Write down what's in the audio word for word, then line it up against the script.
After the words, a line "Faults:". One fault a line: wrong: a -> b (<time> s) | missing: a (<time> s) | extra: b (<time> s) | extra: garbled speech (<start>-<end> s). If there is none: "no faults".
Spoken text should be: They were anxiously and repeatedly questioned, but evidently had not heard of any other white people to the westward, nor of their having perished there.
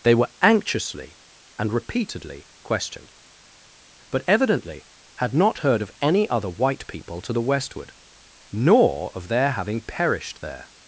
They were anxiously and repeatedly questioned, but evidently had not heard of any other white people to the westward, nor of their having perished there.
Faults:
no faults